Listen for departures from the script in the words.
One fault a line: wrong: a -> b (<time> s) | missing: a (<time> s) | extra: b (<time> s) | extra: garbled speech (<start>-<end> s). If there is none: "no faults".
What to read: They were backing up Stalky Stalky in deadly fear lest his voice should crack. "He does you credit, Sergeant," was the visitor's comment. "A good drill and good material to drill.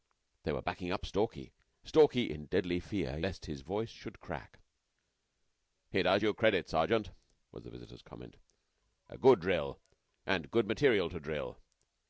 no faults